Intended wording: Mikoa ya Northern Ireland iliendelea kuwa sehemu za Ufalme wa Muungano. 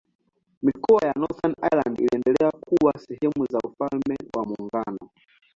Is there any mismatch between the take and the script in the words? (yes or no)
no